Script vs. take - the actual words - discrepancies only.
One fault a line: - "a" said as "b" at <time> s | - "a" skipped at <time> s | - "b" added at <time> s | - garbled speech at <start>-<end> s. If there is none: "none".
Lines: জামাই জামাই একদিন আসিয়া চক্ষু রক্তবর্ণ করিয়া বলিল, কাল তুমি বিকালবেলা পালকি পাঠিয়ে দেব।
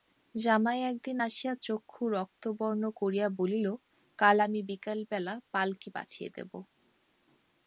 - "জামাই" skipped at 0.8 s
- "তুমি" said as "আমি" at 4.4 s